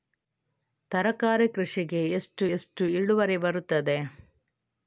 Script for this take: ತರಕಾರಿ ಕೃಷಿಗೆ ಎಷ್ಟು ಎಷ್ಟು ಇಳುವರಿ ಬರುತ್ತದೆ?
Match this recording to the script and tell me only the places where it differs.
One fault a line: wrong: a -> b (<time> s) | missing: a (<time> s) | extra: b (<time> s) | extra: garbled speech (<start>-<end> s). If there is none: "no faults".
no faults